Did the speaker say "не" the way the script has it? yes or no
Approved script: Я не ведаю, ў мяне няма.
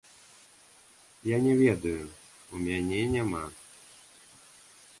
yes